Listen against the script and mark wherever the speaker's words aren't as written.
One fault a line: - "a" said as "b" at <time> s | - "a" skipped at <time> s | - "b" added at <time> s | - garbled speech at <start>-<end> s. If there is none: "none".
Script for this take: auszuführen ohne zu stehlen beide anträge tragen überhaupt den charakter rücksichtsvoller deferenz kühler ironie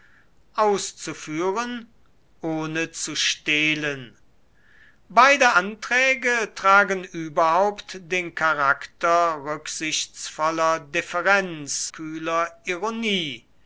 none